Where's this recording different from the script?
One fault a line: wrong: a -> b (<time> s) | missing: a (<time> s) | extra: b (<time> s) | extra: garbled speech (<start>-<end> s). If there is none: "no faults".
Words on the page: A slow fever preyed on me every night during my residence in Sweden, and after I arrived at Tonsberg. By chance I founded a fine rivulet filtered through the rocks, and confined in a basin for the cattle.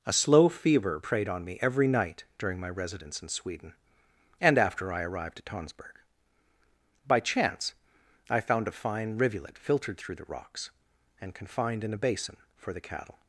wrong: founded -> found (8.4 s)